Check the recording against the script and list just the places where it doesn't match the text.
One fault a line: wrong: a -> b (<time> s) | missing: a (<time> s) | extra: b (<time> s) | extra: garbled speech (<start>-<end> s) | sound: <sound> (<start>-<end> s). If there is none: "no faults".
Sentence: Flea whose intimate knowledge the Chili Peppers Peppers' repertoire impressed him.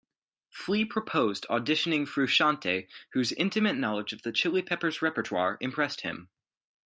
extra: proposed auditioning Frusciante (0.8 s)
extra: of (4.1 s)
missing: Peppers (5.0 s)